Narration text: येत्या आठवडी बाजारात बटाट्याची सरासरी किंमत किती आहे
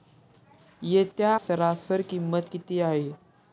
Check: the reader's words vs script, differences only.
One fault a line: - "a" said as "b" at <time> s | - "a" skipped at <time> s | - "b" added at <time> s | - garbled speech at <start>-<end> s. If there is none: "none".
- "आठवडी बाजारात बटाट्याची" skipped at 1.4 s